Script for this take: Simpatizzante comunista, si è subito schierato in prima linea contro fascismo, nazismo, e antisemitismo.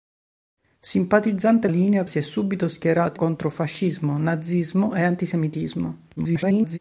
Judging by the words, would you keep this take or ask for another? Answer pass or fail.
fail